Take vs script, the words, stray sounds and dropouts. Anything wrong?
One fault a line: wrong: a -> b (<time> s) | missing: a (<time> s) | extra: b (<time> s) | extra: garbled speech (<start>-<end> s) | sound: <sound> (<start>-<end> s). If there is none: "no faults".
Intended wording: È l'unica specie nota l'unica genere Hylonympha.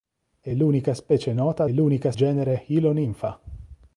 no faults